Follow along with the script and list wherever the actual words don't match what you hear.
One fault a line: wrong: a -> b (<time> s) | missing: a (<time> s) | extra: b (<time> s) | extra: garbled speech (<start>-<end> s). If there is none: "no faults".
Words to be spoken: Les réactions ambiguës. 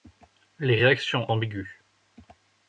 no faults